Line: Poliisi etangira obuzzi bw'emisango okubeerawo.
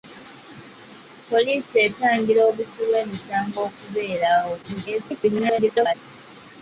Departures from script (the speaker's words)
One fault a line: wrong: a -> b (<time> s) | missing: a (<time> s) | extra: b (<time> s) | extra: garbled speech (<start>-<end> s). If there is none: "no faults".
extra: garbled speech (4.6-5.9 s)